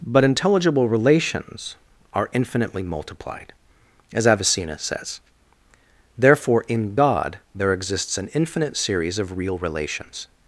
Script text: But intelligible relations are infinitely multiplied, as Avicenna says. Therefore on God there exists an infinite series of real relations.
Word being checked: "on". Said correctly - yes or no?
no